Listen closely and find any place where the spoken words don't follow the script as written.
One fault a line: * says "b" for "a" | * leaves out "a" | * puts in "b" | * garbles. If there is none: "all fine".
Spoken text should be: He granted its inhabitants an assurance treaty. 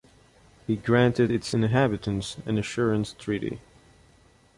all fine